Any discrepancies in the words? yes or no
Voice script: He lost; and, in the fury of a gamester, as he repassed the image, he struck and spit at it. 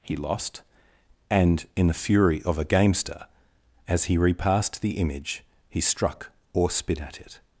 yes